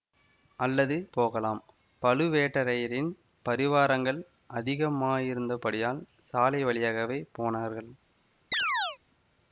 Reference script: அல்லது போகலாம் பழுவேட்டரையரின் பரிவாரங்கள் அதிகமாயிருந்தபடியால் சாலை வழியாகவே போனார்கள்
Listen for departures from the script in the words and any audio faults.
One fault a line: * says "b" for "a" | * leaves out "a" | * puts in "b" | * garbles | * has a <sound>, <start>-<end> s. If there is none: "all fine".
* has a chirp, 8.5-9.0 s